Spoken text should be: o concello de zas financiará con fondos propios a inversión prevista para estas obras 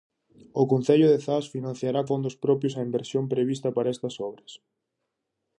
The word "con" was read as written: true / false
false